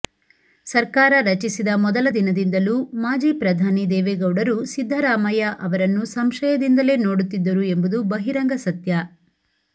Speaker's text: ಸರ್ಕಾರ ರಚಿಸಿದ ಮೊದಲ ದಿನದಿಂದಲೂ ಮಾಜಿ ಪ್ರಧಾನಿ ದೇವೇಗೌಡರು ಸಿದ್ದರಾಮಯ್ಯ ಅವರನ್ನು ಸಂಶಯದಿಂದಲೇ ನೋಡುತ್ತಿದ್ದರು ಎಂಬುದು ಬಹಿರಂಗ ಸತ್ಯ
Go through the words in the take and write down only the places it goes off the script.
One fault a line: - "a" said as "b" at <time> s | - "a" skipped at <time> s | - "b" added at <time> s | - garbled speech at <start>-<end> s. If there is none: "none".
none